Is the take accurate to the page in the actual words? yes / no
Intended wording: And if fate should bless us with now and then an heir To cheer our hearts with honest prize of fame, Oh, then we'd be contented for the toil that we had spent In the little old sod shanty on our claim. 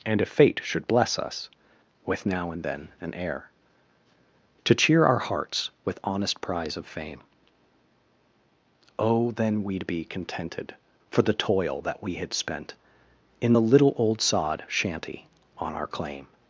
yes